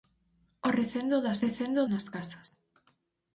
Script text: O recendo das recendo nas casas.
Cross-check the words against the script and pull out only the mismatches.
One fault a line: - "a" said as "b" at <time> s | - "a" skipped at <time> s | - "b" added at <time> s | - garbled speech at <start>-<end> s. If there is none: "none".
none